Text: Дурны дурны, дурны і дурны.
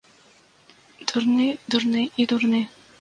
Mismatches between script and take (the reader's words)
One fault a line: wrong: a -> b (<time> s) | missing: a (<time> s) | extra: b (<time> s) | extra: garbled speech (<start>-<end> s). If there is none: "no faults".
missing: дурны (2.0 s)